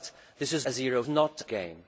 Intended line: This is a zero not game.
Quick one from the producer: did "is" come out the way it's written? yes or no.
yes